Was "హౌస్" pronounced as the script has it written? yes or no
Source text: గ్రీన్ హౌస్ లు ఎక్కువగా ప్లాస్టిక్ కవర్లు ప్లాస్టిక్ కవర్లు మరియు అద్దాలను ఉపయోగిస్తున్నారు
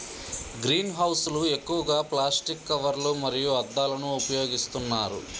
yes